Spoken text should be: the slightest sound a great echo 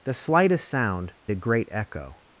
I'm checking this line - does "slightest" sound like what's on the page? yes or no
yes